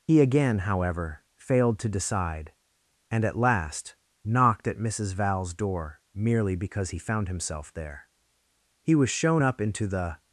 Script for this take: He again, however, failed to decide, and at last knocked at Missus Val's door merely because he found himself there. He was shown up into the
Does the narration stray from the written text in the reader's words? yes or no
no